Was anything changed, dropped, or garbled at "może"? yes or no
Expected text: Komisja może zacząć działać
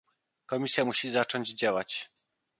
yes